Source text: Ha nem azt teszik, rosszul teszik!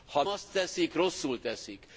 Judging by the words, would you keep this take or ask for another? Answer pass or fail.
fail